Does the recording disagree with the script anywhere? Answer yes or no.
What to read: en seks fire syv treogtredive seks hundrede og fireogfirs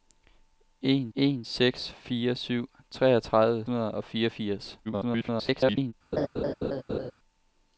yes